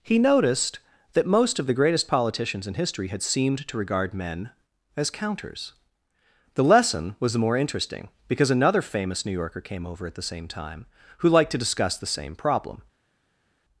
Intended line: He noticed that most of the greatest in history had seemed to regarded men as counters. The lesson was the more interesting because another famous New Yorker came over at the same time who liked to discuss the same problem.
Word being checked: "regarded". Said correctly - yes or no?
no